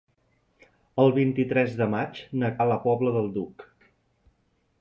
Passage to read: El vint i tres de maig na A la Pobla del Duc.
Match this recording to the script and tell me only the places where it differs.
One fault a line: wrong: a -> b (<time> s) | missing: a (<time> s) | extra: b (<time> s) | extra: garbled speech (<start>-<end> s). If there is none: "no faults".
no faults